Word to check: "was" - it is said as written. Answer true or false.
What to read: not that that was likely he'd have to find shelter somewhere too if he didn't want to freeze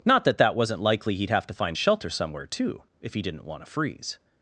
false